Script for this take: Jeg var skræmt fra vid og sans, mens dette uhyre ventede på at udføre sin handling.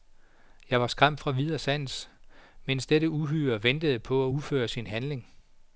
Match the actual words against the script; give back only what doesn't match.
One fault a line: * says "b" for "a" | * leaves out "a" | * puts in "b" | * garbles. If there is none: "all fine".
all fine